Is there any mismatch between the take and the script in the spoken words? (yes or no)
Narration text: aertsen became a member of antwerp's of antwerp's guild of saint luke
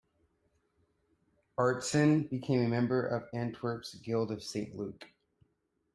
yes